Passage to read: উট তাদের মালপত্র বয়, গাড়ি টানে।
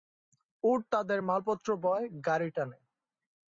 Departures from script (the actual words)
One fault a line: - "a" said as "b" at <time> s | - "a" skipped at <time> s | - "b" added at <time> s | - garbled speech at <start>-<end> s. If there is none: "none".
none